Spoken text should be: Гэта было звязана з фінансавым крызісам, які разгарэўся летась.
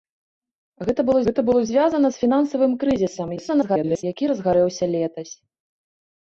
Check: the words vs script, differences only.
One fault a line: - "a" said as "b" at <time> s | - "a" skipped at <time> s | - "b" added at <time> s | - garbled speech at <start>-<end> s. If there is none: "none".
- "гэта было" added at 1.3 s
- garbled speech at 3.4-4.0 s